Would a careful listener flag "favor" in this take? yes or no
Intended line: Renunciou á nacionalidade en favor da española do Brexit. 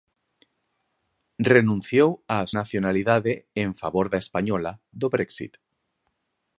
no